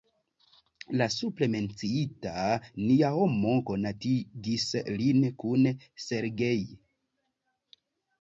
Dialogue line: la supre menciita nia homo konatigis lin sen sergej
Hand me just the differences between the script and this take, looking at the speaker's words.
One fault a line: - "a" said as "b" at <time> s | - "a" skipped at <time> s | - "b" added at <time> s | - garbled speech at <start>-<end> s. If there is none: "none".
- "sen" said as "kun" at 5.4 s